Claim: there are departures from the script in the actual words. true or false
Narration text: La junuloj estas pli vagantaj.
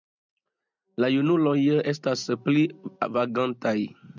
false